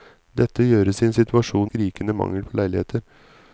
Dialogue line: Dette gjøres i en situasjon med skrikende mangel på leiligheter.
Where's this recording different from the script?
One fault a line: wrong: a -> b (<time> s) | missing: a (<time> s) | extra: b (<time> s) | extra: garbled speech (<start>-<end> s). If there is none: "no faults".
missing: med (1.7 s)